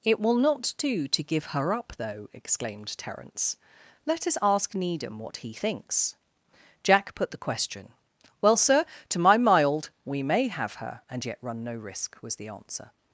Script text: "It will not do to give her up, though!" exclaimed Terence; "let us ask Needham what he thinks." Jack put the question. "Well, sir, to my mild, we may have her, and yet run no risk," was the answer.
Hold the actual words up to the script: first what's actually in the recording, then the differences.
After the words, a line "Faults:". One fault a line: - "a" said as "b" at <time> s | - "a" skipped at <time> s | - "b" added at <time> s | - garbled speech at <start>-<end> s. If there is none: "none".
"It will not do to give her up, though!" exclaimed Terence; "let us ask Needham what he thinks." Jack put the question. "Well, sir, to my mild, we may have her, and yet run no risk," was the answer.
Faults:
none